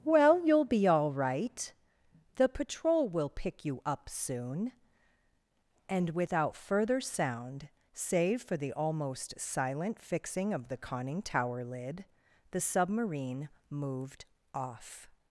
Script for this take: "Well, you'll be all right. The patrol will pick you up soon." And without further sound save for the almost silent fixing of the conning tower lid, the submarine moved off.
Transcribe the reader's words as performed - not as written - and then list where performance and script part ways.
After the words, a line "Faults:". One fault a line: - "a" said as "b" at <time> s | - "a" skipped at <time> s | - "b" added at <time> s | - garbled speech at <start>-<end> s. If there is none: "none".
"Well, you'll be all right. The patrol will pick you up soon." And without further sound save for the almost silent fixing of the conning tower lid, the submarine moved off.
Faults:
none